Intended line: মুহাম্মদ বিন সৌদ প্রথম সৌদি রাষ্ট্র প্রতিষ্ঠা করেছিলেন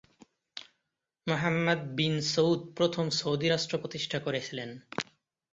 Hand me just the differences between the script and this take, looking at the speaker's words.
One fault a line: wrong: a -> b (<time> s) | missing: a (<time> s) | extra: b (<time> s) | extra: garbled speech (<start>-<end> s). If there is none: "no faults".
no faults